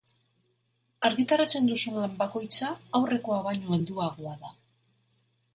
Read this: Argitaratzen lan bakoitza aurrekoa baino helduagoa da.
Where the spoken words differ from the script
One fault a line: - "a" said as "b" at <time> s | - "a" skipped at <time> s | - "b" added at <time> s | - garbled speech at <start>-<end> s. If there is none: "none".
- "duzun" added at 1.7 s